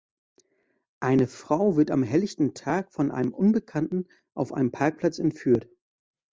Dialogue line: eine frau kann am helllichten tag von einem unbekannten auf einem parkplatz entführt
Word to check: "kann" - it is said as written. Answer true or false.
false